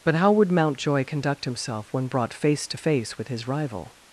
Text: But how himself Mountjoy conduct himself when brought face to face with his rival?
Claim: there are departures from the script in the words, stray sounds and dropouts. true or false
true